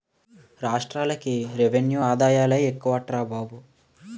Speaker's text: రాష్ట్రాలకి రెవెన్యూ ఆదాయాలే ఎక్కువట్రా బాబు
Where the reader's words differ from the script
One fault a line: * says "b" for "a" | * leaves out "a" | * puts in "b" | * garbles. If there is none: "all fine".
all fine